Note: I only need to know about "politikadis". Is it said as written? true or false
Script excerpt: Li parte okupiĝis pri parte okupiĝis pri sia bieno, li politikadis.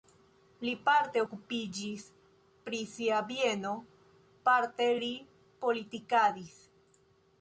true